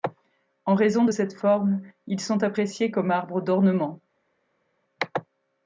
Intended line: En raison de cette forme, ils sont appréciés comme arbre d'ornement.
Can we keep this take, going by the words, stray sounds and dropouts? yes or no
yes